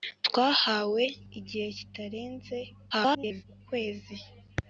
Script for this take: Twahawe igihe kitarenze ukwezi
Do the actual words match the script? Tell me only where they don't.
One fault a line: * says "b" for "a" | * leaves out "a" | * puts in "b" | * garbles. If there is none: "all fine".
* garbles